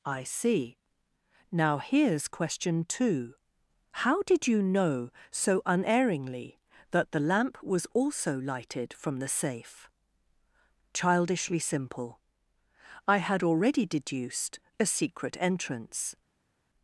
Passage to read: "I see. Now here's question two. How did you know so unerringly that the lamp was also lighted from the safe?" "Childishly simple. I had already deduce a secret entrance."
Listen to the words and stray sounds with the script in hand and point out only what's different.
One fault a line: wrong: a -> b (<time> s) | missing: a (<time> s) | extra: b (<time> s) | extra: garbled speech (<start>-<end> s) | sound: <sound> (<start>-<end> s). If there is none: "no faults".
wrong: deduce -> deduced (13.8 s)